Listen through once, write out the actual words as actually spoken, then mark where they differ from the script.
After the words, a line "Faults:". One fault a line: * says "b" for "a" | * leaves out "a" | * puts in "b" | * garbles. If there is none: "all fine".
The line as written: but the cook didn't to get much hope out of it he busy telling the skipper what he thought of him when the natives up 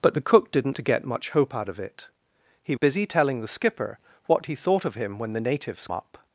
but the cook didn't to get much hope out of it he busy telling the skipper what he thought of him when the natives up
Faults:
all fine